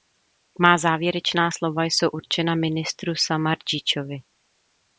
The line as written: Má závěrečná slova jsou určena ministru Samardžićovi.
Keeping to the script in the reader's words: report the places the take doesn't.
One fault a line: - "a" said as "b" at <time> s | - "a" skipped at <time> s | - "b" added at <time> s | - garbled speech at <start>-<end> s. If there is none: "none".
none